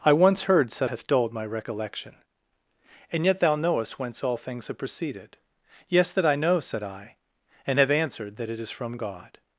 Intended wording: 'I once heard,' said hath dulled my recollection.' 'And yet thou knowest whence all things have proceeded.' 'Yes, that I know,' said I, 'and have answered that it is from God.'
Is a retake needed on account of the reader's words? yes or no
no